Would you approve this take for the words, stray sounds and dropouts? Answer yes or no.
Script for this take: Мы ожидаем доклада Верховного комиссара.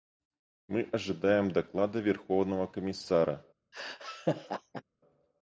no